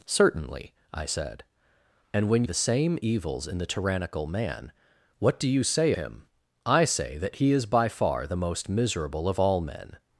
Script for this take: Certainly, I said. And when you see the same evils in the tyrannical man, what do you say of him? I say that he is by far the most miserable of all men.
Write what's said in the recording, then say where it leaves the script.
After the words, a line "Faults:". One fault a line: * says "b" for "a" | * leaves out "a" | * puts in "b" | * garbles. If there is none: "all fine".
Certainly, I said. And when the same evils in the tyrannical man, what do you say him? I say that he is by far the most miserable of all men.
Faults:
* leaves out "you see"
* leaves out "of"